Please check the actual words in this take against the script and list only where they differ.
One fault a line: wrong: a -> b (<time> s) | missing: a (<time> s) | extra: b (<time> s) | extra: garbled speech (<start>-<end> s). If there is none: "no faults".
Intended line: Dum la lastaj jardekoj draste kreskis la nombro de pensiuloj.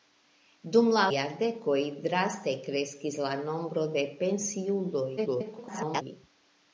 missing: lastaj (1.0 s)
extra: garbled speech (5.2-6.0 s)